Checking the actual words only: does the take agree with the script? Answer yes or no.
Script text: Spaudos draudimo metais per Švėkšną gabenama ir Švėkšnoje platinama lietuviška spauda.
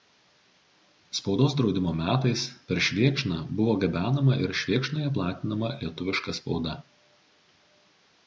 no